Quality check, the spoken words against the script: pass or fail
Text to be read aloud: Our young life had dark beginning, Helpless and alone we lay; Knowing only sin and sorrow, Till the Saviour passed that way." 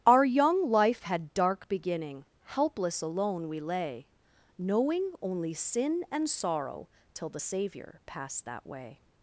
fail